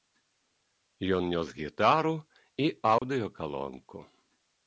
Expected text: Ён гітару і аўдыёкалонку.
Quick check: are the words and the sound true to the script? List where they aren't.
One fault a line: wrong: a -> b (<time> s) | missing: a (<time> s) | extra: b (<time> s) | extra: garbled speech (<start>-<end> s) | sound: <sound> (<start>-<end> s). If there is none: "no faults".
extra: нёс (1.3 s)
sound: dropout (3.0-3.0 s)